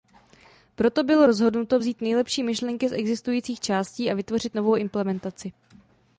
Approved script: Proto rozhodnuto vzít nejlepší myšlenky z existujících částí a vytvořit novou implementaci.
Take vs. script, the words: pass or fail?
fail